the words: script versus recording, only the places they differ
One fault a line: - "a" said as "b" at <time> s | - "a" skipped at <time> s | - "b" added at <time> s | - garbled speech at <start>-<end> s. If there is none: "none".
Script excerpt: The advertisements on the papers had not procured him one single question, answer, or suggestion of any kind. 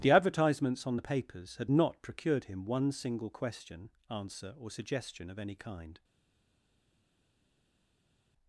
none